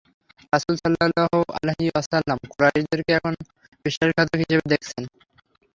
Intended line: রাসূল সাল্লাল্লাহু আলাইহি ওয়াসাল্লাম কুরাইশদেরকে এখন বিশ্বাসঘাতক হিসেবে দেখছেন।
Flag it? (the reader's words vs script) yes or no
no